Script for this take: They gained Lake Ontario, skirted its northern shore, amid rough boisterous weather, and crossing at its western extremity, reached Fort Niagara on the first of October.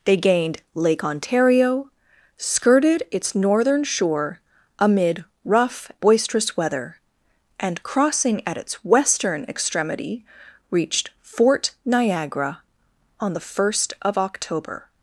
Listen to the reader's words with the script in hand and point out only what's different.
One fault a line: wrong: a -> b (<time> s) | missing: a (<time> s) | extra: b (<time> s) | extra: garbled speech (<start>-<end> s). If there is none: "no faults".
no faults